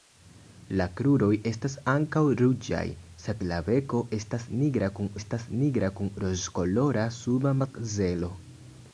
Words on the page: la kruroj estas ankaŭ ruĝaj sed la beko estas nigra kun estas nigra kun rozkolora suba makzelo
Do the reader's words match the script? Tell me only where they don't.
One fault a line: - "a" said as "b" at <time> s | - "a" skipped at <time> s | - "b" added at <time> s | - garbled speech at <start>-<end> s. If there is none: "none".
none